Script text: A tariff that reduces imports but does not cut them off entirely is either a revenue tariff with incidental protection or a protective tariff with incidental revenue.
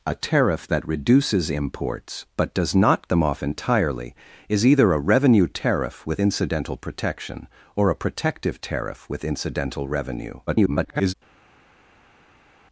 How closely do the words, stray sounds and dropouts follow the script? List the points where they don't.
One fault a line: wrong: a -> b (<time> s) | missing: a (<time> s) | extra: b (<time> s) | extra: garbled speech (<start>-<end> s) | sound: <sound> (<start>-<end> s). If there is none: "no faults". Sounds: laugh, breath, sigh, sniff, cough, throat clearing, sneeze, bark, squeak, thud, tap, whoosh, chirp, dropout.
missing: cut (3.1 s)
extra: garbled speech (10.5-11.1 s)